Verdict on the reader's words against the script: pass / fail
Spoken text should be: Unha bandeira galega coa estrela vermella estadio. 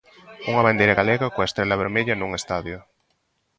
fail